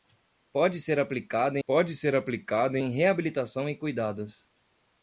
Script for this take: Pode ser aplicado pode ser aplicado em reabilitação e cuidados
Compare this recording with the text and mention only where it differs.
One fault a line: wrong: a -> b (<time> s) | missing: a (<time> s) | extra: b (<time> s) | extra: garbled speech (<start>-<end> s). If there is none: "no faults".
no faults